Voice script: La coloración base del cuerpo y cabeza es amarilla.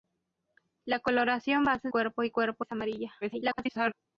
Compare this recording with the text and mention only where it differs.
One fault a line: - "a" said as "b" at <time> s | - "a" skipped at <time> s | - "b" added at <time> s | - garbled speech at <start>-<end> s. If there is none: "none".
- "del" skipped at 1.9 s
- "cabeza" said as "cuerpo" at 2.3 s
- garbled speech at 3.2-3.9 s